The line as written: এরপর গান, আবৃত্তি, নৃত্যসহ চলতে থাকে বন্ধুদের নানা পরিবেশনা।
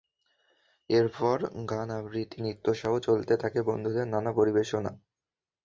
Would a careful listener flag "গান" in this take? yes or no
no